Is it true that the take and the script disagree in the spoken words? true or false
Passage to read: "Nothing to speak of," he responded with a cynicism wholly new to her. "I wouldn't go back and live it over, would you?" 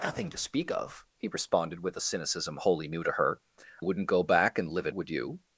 true